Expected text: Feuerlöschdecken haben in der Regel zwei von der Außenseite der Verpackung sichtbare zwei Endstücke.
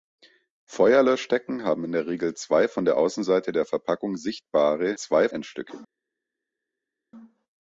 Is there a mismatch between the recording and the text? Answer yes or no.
no